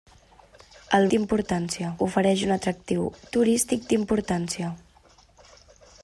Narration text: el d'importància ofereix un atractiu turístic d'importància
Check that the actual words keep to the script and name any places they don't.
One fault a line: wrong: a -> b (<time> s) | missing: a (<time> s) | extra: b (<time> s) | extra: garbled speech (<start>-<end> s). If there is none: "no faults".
no faults